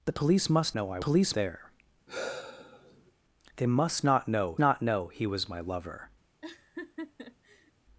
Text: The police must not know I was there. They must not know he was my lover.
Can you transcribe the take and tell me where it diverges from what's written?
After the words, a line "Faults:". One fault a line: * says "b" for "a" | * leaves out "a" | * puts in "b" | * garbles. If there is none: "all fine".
The police must know I police there. They must not know not know he was my lover.
Faults:
* leaves out "not"
* says "police" for "was"
* puts in "not know"